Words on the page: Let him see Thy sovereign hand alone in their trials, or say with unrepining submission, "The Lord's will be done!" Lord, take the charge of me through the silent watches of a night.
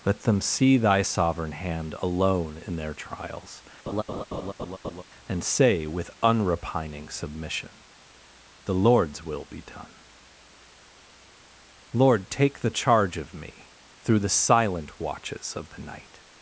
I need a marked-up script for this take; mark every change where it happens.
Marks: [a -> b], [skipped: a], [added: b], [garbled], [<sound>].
Let [him -> them] see Thy sovereign hand alone in their trials, [laugh] [or -> and] say with unrepining submission, "The Lord's will be done!" Lord, take the charge of me through the silent watches of [a -> the] night.